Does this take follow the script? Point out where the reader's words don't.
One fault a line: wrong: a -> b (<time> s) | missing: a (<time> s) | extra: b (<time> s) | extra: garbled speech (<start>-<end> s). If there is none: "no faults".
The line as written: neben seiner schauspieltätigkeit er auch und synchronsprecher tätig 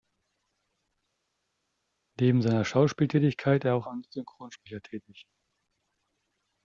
no faults